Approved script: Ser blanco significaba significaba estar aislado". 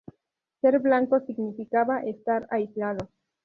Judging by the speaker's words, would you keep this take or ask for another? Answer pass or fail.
fail